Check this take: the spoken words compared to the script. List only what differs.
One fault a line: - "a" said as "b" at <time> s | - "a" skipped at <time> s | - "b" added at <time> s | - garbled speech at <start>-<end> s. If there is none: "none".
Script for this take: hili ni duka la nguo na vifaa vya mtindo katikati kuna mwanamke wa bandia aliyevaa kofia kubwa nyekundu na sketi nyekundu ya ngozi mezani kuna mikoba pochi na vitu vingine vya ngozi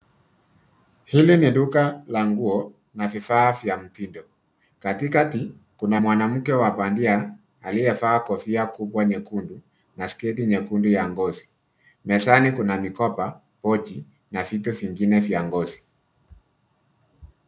none